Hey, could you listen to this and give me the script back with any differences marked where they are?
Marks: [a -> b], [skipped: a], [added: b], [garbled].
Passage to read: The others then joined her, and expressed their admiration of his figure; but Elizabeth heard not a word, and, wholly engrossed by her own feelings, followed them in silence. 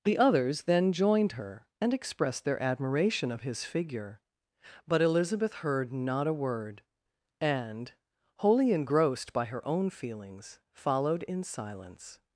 The others then joined her, and expressed their admiration of his figure; but Elizabeth heard not a word, and, wholly engrossed by her own feelings, followed [skipped: them] in silence.